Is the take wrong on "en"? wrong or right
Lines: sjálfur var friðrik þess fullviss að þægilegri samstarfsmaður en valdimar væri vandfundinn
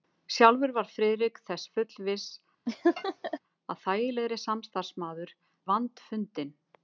wrong